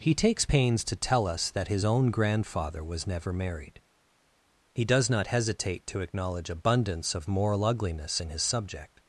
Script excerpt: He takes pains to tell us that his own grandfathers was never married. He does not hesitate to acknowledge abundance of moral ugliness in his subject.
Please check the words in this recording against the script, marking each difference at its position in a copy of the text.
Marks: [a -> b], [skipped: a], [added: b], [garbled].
He takes pains to tell us that his own [grandfathers -> grandfather] was never married. He does not hesitate to acknowledge abundance of moral ugliness in his subject.